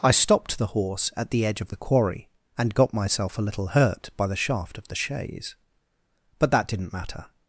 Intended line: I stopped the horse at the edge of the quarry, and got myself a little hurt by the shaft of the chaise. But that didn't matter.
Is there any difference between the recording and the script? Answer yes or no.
no